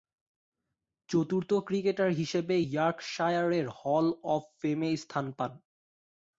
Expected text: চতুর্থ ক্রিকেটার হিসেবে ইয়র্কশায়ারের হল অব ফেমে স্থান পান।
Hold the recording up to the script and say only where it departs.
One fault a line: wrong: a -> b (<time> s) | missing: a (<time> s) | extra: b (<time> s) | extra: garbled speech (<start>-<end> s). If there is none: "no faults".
no faults